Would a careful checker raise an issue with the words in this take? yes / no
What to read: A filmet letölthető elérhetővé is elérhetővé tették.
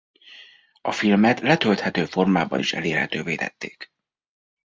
yes